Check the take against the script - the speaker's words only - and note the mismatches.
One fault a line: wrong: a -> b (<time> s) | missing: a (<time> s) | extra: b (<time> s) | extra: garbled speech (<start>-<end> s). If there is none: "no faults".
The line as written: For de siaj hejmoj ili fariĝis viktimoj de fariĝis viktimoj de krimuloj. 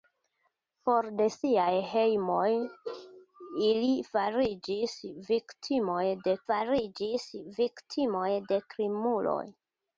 no faults